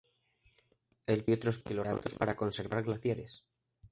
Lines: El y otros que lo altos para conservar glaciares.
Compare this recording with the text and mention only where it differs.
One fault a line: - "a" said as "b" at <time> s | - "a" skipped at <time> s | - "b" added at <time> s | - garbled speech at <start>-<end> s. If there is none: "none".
none